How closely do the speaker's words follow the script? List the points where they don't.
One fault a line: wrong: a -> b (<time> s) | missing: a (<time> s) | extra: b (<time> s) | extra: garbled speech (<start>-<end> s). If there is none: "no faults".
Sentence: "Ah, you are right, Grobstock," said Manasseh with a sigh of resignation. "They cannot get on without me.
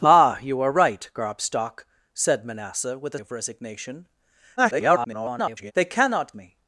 missing: sigh (3.2 s)
extra: garbled speech (4.6-5.7 s)
missing: get on without (6.3 s)